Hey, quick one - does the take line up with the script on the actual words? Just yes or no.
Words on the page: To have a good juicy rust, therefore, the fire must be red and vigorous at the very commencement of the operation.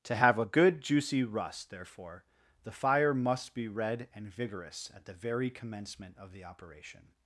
yes